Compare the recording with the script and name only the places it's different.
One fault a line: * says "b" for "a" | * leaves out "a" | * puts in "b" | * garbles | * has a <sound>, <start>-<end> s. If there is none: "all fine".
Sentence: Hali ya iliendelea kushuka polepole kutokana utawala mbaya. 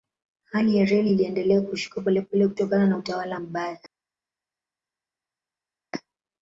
* puts in "reli"
* puts in "na"